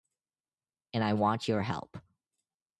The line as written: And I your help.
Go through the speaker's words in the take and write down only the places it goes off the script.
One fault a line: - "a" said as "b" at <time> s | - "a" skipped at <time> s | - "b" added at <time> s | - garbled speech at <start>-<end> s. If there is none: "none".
- "want" added at 1.1 s